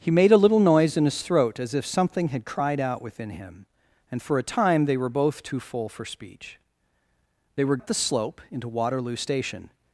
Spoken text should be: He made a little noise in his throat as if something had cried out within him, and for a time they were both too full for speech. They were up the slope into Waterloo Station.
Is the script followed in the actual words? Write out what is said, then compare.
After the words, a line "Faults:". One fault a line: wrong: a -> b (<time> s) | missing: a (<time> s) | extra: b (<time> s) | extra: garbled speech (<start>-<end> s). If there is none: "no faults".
He made a little noise in his throat as if something had cried out within him, and for a time they were both too full for speech. They were up the slope into Waterloo Station.
Faults:
no faults